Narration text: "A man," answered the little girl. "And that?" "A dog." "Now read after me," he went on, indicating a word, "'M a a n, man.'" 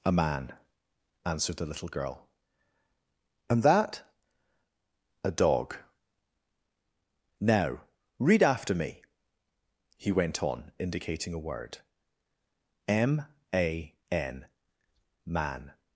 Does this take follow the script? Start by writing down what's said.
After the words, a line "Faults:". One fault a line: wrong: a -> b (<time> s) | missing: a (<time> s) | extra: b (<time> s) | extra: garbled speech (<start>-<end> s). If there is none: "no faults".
"A man," answered the little girl. "And that?" "A dog." "Now read after me," he went on, indicating a word, "'M a n, man.'"
Faults:
missing: a (13.9 s)